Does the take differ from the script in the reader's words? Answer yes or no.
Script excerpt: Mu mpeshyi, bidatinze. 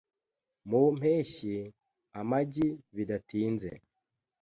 yes